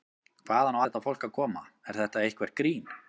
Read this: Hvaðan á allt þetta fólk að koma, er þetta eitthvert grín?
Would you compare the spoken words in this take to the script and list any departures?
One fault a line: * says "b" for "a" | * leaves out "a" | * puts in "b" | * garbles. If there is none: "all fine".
* leaves out "allt"